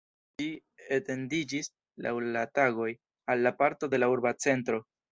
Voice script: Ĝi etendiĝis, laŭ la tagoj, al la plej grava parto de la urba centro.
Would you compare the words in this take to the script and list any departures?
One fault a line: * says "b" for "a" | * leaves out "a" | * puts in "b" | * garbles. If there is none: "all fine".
* leaves out "plej grava"